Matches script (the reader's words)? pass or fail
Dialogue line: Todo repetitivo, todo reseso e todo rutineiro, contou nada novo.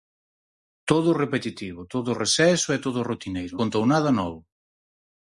pass